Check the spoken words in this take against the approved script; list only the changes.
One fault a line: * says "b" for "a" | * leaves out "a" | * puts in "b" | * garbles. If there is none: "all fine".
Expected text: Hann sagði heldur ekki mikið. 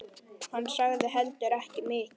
all fine